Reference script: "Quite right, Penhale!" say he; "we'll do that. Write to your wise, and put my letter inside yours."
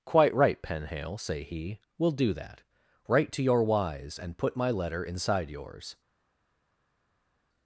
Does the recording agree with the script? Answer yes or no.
yes